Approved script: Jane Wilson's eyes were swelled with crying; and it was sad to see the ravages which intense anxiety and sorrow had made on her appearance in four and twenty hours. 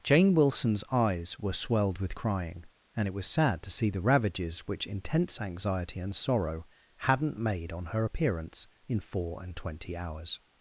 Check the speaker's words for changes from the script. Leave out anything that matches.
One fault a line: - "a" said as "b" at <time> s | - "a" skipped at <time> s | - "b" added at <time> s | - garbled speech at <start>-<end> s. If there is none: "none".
- "had" said as "hadn't" at 7.0 s